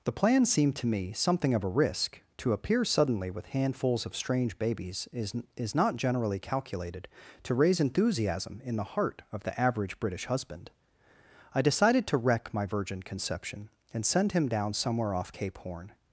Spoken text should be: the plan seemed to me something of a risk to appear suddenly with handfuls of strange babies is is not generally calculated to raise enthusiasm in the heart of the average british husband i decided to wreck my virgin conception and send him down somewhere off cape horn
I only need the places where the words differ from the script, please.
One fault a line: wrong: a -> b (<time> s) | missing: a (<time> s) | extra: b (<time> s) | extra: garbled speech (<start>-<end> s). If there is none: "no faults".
no faults